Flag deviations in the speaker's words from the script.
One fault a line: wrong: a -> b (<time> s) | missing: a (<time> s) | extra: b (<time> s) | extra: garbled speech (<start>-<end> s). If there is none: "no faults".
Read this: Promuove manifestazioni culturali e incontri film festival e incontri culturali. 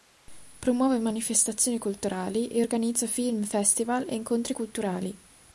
wrong: incontri -> organizza (2.6 s)